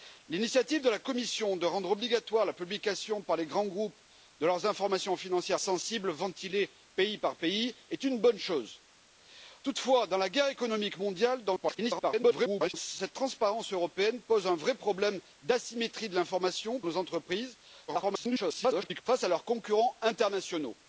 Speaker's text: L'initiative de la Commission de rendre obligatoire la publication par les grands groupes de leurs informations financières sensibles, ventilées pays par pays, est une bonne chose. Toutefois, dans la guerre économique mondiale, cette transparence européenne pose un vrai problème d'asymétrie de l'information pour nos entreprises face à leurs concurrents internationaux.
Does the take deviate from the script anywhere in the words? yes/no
yes